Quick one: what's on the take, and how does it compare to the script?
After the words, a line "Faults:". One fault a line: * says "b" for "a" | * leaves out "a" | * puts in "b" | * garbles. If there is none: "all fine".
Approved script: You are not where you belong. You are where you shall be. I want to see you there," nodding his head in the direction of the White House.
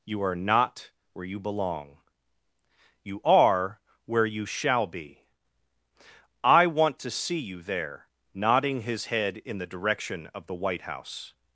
You are not where you belong. You are where you shall be. I want to see you there," nodding his head in the direction of the White House.
Faults:
all fine